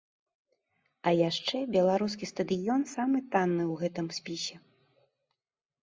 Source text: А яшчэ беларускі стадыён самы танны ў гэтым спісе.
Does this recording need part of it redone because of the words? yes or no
no